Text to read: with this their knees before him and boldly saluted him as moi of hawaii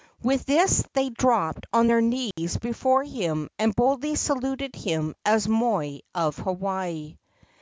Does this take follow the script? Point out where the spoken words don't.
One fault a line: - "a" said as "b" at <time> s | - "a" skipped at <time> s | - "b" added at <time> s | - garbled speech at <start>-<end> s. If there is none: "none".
- "they dropped on" added at 0.9 s